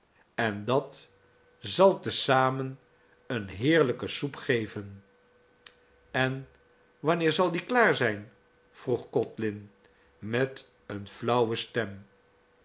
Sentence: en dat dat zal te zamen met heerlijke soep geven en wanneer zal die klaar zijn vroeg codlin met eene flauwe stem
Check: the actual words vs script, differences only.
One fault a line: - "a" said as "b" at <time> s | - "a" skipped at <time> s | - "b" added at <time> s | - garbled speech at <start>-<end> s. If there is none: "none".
- "dat" skipped at 1.1 s
- "met" said as "eene" at 3.3 s